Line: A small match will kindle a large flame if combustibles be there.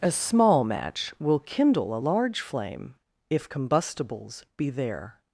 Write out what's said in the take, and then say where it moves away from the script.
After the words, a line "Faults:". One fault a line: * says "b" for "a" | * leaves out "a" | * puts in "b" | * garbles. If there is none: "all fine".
A small match will kindle a large flame if combustibles be there.
Faults:
all fine